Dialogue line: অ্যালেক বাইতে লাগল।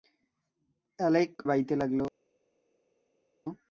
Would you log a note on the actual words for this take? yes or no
no